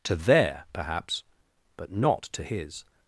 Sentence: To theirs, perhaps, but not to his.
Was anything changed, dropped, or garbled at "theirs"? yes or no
yes